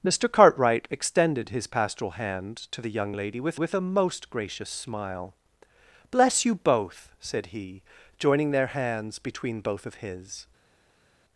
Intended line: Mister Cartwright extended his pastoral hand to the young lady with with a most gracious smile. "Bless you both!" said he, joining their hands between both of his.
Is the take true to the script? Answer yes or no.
yes